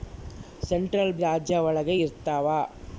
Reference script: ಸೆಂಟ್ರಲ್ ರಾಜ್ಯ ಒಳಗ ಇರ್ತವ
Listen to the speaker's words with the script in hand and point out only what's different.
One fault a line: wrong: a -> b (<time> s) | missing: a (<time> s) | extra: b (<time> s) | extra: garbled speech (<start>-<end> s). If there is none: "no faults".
no faults